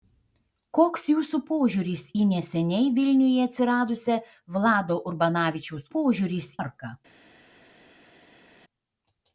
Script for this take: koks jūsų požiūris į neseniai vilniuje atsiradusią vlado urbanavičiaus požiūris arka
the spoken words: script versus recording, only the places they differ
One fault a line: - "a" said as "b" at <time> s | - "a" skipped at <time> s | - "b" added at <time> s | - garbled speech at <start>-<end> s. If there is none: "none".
none